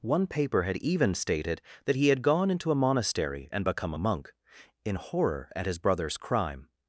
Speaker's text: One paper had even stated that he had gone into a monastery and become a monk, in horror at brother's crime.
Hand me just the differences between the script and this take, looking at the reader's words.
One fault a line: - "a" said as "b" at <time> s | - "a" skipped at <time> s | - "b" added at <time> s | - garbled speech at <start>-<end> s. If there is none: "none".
- "his" added at 5.7 s